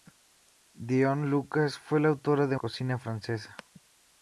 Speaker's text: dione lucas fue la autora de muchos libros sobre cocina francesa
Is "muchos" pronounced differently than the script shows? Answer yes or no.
yes